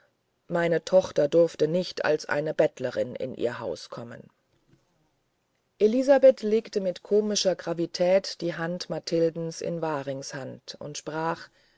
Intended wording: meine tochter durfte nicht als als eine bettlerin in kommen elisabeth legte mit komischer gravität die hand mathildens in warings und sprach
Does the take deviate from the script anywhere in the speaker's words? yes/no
yes